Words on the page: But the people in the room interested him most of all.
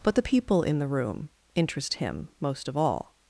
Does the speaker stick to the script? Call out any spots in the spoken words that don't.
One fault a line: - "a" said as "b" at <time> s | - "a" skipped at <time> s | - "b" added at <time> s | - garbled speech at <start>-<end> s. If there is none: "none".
- "interested" said as "interest" at 1.5 s